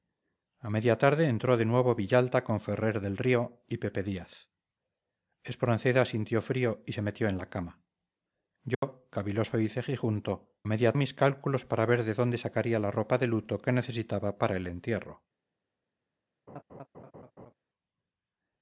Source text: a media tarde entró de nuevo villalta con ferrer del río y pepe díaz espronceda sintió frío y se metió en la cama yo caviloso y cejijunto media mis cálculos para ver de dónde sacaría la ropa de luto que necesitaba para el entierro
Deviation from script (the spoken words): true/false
false